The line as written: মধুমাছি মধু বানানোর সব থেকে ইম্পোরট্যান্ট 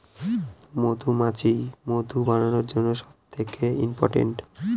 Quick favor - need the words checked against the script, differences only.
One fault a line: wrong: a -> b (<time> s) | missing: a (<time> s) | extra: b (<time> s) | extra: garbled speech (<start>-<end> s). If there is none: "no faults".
extra: জন্য (2.7 s)